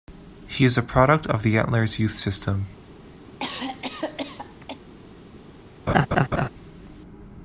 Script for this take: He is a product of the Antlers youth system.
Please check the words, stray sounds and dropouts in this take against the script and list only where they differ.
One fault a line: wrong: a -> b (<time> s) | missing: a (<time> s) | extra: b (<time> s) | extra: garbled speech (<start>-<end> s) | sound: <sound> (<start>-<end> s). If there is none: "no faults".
sound: cough (3.3-4.8 s)
sound: laugh (5.9-6.5 s)